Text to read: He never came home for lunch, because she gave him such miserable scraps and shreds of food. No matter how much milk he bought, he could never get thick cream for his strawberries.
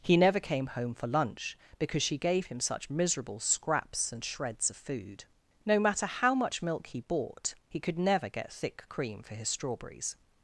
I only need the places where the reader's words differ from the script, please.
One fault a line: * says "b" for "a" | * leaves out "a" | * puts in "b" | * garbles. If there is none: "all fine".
all fine